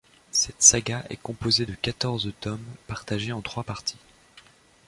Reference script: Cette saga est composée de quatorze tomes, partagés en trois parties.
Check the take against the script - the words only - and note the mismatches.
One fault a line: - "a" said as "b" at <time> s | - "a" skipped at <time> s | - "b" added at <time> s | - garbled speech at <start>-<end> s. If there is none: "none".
none